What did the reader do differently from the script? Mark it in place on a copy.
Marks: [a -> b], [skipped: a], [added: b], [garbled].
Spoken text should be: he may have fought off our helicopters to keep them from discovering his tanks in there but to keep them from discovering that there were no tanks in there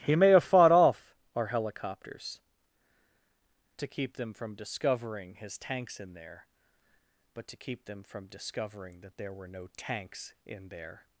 he may have fought off our helicopters to keep them from discovering his tanks in there but to keep them from discovering that there were no tanks in there